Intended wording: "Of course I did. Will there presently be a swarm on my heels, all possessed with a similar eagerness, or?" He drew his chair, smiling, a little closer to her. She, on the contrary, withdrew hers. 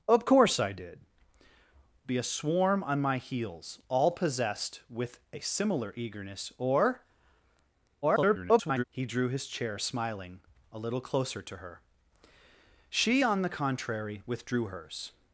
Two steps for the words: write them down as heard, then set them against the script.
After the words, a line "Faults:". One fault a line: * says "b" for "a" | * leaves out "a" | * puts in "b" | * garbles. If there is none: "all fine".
"Of course I did. Be a swarm on my heels, all possessed with a similar eagerness, or?" [garbled] He drew his chair, smiling, a little closer to her. She, on the contrary, withdrew hers.
Faults:
* leaves out "Will there presently"
* garbles